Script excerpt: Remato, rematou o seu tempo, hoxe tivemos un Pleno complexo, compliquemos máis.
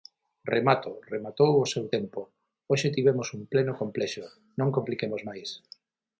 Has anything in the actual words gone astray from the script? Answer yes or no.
yes